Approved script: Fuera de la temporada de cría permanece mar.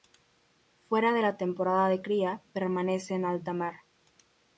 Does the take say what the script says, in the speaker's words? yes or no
no